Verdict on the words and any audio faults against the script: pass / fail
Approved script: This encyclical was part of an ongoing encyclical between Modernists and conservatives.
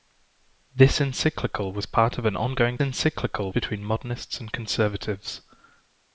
pass